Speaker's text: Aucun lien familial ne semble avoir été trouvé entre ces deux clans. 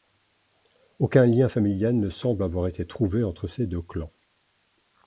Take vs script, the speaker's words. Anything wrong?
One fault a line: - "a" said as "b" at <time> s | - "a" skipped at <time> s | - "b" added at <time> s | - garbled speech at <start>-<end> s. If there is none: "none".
none